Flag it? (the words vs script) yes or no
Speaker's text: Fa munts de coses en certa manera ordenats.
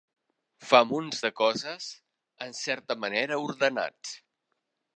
no